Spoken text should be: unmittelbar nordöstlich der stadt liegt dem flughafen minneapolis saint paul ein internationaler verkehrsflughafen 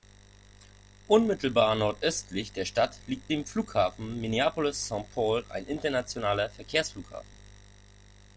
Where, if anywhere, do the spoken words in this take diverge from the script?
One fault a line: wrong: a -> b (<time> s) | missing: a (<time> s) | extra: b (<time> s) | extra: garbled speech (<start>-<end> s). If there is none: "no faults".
no faults